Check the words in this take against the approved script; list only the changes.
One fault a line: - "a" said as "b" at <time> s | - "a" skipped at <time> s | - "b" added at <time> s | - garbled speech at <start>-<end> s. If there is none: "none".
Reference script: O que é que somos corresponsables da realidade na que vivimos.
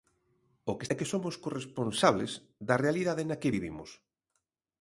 none